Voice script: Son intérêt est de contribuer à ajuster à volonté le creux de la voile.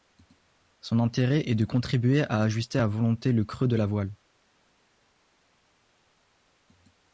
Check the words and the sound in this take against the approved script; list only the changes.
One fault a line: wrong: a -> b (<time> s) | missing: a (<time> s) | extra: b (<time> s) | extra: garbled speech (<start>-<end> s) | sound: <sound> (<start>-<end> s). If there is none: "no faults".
no faults